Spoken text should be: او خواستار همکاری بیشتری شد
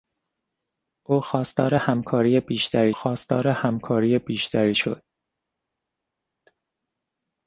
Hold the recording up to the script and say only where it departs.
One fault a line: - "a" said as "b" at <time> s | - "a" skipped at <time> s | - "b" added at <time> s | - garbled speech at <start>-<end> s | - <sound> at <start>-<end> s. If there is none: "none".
- "خواستار همکاری بیشتری" added at 2.9 s